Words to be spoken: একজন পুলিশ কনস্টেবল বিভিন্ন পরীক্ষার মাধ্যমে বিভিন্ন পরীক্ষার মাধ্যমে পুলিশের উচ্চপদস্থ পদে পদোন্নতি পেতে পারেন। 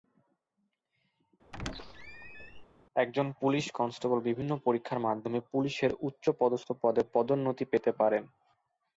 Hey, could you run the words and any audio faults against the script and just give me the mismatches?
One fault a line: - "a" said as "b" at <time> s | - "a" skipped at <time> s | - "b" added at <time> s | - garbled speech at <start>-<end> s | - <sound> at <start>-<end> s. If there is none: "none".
- squeak at 1.5-2.7 s
- "বিভিন্ন পরীক্ষার মাধ্যমে" skipped at 5.4 s